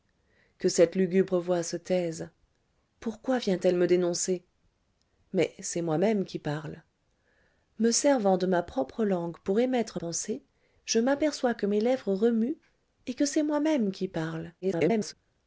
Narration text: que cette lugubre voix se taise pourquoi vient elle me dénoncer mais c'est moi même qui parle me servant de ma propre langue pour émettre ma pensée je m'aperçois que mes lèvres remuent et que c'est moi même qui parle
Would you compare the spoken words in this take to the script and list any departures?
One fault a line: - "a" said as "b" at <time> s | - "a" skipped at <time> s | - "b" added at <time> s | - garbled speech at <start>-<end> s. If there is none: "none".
- "ma" skipped at 10.0 s
- garbled speech at 14.6-15.1 s